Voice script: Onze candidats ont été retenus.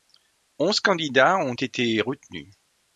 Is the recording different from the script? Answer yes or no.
no